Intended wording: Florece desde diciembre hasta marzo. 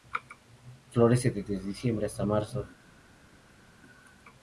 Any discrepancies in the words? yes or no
no